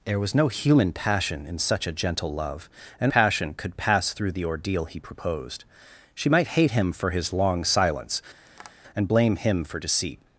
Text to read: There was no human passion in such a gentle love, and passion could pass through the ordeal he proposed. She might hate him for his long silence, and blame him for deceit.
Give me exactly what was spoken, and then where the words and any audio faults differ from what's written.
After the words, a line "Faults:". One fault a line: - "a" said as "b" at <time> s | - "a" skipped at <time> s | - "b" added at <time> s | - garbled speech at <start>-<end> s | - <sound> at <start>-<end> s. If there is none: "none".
There was no human passion in such a gentle love, and passion could pass through the ordeal he proposed. She might hate him for his long silence, and blame him for deceit.
Faults:
- tap at 8.5-8.8 s